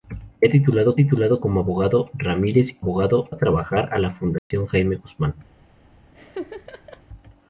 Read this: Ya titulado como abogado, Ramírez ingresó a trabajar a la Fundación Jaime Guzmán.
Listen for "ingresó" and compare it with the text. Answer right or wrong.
wrong